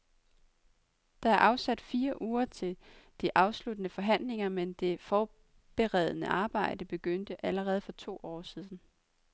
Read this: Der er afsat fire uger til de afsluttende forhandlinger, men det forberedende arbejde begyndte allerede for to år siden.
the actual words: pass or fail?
pass